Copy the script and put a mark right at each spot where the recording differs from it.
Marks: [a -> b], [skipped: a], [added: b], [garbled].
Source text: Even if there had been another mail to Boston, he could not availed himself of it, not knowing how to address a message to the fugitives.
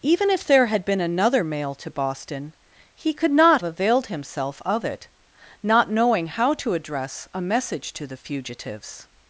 Even if there had been another mail to Boston, he could not availed himself of it, not knowing how to address a message to the fugitives.